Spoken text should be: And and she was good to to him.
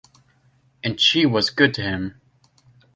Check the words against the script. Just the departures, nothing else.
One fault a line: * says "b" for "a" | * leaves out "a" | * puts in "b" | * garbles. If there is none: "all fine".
* leaves out "and"
* leaves out "to"